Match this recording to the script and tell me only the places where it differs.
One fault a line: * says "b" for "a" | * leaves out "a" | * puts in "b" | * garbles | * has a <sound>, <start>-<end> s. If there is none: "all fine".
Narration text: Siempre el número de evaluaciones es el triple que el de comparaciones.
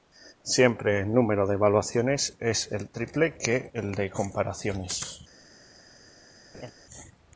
* has a laugh, 6.5-6.7 s